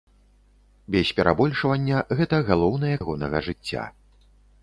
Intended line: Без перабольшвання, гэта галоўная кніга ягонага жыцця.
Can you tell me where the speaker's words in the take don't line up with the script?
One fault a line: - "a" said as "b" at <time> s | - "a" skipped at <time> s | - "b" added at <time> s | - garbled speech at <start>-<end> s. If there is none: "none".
- "кніга" skipped at 3.0 s